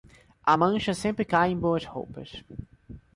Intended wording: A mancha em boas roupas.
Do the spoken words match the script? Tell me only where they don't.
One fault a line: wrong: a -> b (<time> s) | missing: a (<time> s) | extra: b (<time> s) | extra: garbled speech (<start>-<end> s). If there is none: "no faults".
extra: sempre cai (0.9 s)